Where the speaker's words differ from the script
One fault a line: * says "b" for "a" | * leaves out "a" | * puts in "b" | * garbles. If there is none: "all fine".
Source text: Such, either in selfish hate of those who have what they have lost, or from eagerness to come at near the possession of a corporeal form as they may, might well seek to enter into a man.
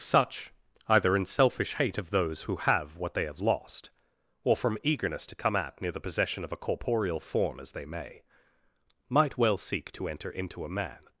all fine